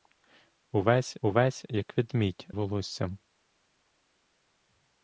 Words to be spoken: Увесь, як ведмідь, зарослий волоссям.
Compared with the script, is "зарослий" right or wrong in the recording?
wrong